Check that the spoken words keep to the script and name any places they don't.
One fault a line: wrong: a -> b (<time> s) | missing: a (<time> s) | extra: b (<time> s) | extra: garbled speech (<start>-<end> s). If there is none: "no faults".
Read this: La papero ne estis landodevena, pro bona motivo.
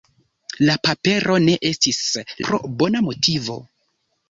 missing: landodevena (2.0 s)